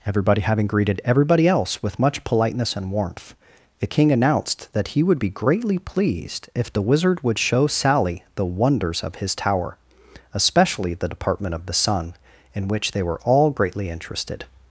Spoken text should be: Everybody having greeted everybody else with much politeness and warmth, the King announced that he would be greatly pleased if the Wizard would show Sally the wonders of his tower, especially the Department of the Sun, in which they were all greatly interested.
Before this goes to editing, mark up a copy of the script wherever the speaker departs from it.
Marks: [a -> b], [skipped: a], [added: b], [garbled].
Everybody having greeted everybody else with much politeness and warmth, the King announced that he would be greatly pleased if the Wizard would show Sally the wonders of his tower, especially the Department of the Sun, in which they were all greatly interested.